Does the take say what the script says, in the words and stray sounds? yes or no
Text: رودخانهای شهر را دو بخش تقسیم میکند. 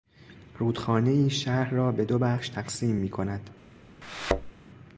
no